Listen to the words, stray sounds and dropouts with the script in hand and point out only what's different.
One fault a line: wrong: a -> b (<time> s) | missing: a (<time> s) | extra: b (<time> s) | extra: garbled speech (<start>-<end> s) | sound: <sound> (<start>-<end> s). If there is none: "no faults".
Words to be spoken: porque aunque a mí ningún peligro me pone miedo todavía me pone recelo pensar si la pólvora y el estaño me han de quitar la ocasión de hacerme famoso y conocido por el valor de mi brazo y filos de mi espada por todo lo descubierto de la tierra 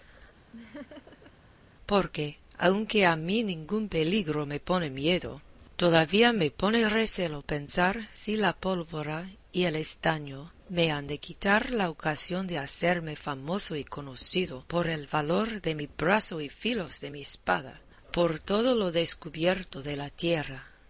sound: laugh (0.5-1.3 s)